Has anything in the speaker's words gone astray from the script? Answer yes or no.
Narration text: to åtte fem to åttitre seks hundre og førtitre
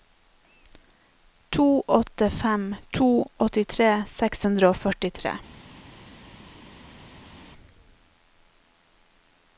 no